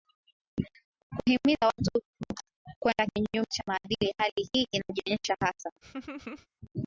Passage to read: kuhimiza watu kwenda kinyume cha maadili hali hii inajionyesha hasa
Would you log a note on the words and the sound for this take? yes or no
yes